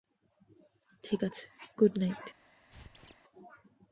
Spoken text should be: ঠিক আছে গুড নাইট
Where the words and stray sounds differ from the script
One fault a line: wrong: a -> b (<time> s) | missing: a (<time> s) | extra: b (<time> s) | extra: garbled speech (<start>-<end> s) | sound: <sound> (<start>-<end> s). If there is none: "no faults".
sound: squeak (2.7-3.2 s)